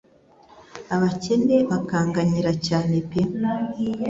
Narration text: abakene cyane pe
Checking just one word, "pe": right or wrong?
right